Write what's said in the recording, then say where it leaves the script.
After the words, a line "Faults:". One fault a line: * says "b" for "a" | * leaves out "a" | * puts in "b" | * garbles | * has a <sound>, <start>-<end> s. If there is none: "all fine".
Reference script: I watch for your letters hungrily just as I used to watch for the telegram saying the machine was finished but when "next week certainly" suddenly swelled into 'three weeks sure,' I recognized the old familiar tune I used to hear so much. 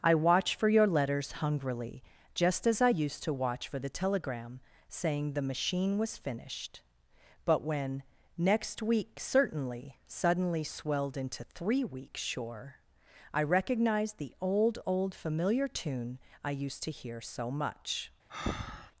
I watch for your letters hungrily just as I used to watch for the telegram saying the machine was finished but when "next week certainly" suddenly swelled into 'three weeks sure,' I recognized the old old familiar tune I used to hear so much.
Faults:
* puts in "old"
* has a breath, 18.3-18.9 s